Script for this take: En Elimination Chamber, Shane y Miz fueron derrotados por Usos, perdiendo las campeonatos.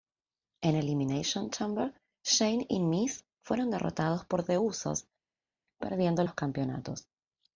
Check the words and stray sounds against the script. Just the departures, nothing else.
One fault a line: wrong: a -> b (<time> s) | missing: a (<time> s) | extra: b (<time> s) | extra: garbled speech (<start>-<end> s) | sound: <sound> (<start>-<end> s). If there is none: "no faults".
extra: The (4.4 s)
wrong: las -> los (6.2 s)